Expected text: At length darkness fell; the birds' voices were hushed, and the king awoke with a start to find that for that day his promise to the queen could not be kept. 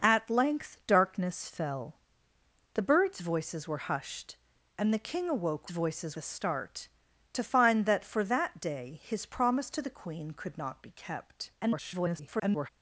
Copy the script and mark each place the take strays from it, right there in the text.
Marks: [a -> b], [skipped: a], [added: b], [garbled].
At length darkness fell; the birds' voices were hushed, and the king awoke [with -> voices] a start to find that for that day his promise to the queen could not be kept. [garbled]